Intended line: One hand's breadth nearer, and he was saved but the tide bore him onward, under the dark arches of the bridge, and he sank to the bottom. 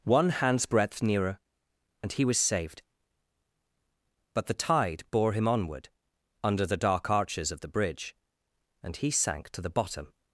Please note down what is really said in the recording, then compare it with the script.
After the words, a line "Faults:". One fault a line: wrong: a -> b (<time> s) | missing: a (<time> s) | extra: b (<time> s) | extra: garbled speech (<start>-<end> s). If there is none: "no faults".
One hand's breadth nearer, and he was saved but the tide bore him onward, under the dark arches of the bridge, and he sank to the bottom.
Faults:
no faults